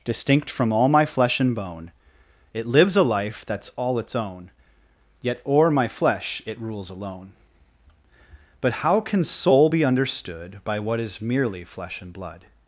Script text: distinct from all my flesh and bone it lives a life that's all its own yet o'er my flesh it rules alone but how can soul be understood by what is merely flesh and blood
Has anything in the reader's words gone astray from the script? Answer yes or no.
no